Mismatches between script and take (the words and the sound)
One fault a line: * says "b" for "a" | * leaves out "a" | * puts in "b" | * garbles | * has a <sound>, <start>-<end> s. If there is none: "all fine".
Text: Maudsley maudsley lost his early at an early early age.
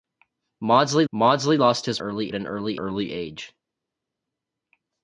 all fine